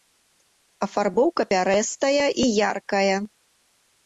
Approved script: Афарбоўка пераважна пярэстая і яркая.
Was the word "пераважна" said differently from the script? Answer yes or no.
yes